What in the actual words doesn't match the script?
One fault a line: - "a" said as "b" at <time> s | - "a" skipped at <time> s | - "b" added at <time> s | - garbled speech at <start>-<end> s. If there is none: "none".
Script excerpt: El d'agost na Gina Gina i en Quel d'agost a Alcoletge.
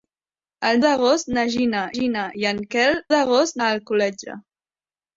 none